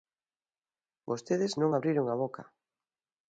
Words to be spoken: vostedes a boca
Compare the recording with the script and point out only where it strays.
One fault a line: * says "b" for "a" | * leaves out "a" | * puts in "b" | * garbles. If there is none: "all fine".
* puts in "non abriron"